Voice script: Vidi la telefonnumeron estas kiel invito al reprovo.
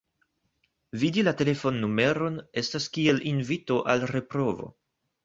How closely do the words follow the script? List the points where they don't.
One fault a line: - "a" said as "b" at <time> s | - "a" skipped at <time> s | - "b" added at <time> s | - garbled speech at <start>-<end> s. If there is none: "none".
none